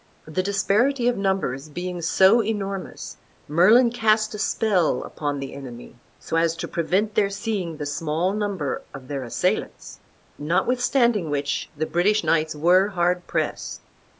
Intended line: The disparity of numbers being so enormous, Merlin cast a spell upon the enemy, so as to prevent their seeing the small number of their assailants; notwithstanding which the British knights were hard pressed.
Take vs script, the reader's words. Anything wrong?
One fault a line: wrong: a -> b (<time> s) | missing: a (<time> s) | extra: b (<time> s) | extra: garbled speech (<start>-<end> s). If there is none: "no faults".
no faults